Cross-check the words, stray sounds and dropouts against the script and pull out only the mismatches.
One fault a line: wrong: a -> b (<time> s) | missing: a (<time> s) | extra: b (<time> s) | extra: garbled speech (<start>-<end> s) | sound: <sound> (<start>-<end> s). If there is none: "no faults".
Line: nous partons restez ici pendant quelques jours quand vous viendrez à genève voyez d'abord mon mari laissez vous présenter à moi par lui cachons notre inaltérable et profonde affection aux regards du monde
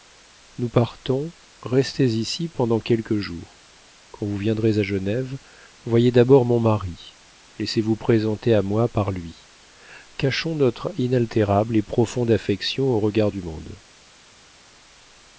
no faults